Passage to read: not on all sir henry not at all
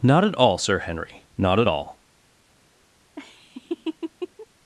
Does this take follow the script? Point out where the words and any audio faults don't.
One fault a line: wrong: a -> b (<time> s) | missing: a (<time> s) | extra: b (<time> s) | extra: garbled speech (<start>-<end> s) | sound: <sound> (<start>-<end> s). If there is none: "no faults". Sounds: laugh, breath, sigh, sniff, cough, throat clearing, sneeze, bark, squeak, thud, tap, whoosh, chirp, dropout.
wrong: on -> at (0.2 s)
sound: laugh (3.2-4.5 s)